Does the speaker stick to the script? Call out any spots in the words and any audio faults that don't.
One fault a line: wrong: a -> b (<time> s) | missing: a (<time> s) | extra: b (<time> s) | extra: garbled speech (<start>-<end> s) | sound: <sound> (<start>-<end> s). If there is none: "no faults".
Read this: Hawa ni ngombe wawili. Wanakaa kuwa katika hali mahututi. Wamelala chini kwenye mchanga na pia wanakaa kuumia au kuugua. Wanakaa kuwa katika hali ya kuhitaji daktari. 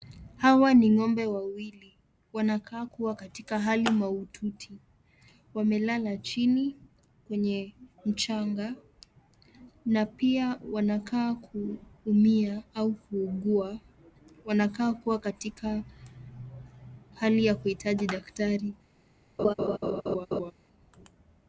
sound: laugh (19.4-20.5 s)